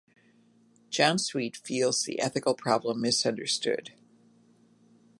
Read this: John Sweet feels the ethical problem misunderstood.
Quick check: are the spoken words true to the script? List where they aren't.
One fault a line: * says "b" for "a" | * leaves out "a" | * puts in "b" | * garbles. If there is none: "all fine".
all fine